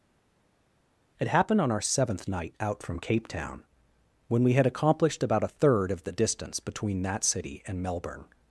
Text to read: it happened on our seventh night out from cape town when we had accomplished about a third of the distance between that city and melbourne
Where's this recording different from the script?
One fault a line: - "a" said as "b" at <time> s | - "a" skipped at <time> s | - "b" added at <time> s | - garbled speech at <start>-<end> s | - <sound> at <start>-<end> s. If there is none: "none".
none